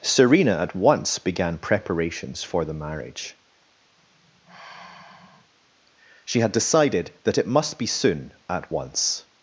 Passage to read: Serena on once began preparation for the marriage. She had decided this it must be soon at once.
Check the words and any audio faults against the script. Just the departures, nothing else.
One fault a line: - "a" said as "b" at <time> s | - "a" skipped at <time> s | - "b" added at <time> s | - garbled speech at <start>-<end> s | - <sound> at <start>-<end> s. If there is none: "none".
- "on" said as "at" at 0.6 s
- "preparation" said as "preparations" at 1.6 s
- sigh at 4.0-5.5 s
- "this" said as "that" at 7.2 s